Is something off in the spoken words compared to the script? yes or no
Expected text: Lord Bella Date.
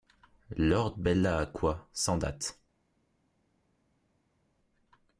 yes